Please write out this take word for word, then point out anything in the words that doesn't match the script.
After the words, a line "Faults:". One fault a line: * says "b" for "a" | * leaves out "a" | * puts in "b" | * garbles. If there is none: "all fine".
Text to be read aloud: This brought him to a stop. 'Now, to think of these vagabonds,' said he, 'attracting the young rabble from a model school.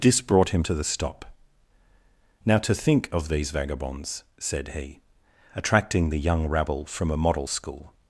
This brought him to the stop. 'Now, to think of these vagabonds,' said he, 'attracting the young rabble from a model school.
Faults:
* says "the" for "a"